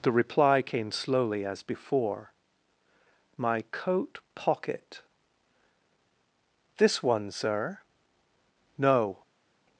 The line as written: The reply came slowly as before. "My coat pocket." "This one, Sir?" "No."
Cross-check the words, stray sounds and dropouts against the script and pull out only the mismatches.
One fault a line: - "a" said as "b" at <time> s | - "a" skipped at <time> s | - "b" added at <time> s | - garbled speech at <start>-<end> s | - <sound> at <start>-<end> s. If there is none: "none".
none